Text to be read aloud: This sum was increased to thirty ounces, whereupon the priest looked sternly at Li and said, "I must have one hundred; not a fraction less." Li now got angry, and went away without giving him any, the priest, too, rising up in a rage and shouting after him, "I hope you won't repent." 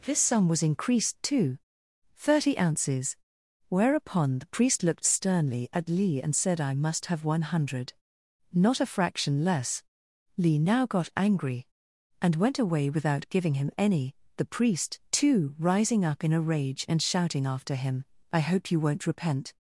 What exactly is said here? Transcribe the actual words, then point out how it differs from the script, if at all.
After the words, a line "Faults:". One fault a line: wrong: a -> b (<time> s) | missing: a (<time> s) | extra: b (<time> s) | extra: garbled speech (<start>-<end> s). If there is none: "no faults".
This sum was increased to thirty ounces, whereupon the priest looked sternly at Li and said, "I must have one hundred; not a fraction less." Li now got angry, and went away without giving him any, the priest, too, rising up in a rage and shouting after him, "I hope you won't repent."
Faults:
no faults